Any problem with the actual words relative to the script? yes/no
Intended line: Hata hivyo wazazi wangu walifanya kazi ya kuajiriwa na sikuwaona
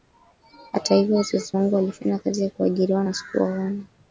no